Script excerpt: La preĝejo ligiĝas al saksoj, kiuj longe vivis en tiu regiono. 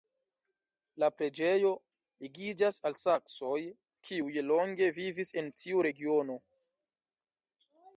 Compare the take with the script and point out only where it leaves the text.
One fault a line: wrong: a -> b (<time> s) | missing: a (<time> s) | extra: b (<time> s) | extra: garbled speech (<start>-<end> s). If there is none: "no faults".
no faults